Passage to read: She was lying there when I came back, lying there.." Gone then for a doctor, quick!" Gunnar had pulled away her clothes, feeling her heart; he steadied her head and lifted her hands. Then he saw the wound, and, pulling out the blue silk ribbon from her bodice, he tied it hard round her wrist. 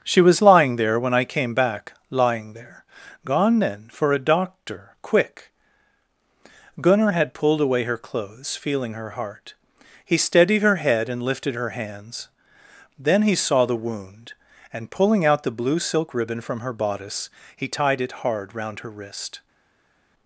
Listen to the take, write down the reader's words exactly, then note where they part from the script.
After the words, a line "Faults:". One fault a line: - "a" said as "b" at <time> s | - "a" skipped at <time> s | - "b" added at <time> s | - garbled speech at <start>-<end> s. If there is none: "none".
She was lying there when I came back, lying there.." Gone then for a doctor, quick!" Gunnar had pulled away her clothes, feeling her heart; he steadied her head and lifted her hands. Then he saw the wound, and, pulling out the blue silk ribbon from her bodice, he tied it hard round her wrist.
Faults:
none